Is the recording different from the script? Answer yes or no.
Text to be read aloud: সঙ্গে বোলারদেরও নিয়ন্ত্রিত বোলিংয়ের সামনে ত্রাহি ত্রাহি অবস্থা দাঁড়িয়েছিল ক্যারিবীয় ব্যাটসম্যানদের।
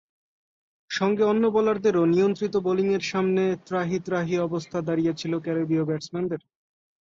yes